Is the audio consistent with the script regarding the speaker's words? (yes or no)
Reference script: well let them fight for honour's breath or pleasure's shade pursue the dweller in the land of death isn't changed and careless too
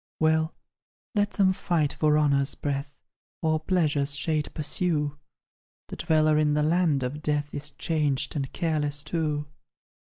no